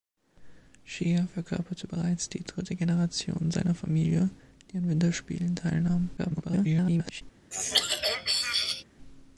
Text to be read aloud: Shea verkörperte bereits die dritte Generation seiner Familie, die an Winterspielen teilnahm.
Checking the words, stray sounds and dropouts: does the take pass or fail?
fail